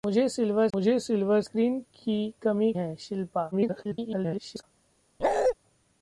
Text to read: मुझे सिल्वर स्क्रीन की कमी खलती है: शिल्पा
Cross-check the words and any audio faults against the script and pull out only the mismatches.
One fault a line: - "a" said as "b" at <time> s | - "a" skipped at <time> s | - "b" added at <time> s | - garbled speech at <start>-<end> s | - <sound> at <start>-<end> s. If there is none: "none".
- "मुझे सिल्वर" added at 0.7 s
- "खलती" skipped at 2.7 s
- garbled speech at 3.5-4.6 s
- bark at 5.2-5.5 s